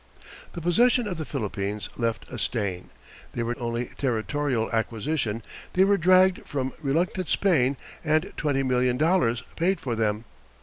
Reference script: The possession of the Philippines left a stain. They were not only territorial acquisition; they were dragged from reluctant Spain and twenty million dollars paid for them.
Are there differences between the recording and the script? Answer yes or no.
yes